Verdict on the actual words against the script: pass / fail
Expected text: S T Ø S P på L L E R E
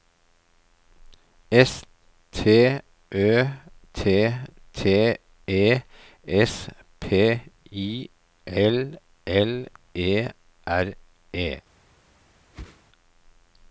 fail